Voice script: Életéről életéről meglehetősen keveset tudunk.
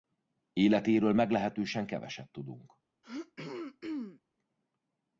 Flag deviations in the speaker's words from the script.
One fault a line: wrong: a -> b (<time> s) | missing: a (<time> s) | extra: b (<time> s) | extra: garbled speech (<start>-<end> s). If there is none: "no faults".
missing: életéről (1.1 s)